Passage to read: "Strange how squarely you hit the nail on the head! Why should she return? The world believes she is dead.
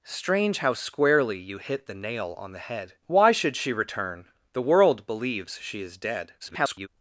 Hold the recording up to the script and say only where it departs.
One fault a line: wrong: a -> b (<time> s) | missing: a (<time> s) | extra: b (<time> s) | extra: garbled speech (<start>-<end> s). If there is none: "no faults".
extra: garbled speech (6.4-6.9 s)